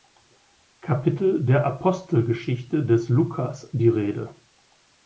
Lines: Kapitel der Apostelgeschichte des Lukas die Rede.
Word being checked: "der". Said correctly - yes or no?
yes